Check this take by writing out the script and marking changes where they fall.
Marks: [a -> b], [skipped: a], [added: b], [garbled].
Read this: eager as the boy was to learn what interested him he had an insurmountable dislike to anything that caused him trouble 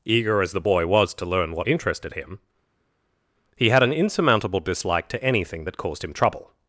eager as the boy was to learn what interested him he had an insurmountable dislike to anything that caused him trouble